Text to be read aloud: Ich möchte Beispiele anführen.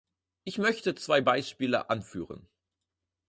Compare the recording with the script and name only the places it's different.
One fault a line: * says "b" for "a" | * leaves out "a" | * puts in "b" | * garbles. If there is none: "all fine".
* puts in "zwei"